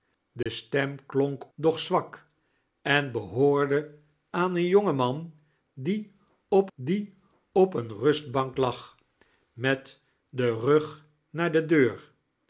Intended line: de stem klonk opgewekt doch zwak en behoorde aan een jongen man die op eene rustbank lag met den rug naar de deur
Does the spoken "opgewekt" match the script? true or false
false